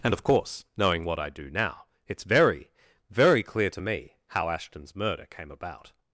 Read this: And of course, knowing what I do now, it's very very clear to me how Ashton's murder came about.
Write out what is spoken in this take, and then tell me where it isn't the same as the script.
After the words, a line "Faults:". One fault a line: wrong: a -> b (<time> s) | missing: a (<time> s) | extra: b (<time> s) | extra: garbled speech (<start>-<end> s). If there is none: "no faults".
And of course, knowing what I do now, it's very very clear to me how Ashton's murder came about.
Faults:
no faults